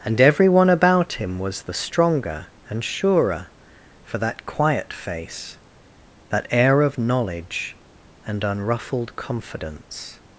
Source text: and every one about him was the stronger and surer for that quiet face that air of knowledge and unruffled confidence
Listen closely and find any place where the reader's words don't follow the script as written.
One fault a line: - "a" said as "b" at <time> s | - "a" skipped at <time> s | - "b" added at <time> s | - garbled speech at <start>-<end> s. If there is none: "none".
none